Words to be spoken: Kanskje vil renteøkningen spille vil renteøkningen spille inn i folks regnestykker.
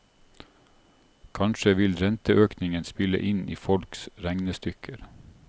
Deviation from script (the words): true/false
true